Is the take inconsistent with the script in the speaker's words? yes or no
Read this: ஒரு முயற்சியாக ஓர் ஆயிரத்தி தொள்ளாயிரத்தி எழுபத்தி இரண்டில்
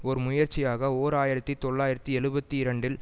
no